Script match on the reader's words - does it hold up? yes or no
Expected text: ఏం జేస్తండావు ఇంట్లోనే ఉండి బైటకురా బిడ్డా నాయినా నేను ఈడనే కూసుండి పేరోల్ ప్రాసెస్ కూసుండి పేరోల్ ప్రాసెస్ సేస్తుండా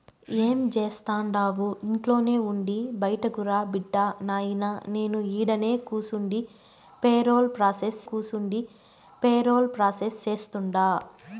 yes